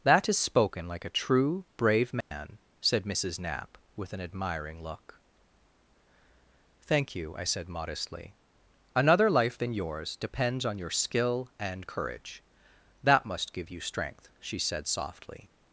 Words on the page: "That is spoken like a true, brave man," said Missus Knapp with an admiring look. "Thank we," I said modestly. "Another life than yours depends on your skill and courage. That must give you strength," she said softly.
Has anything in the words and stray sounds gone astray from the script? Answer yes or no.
yes